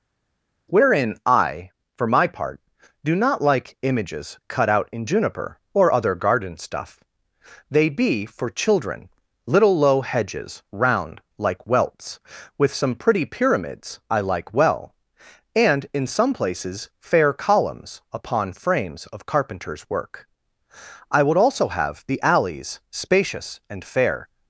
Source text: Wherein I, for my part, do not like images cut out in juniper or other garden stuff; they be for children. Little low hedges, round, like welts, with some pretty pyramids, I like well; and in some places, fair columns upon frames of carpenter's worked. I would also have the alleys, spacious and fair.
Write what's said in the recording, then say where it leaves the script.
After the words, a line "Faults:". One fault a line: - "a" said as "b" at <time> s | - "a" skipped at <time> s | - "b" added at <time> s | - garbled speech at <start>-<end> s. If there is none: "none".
Wherein I, for my part, do not like images cut out in juniper or other garden stuff; they be for children. Little low hedges, round, like welts, with some pretty pyramids, I like well; and in some places, fair columns upon frames of carpenter's work. I would also have the alleys, spacious and fair.
Faults:
- "worked" said as "work" at 19.9 s